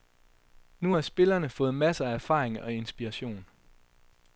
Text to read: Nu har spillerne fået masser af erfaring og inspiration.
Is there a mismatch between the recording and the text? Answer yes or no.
no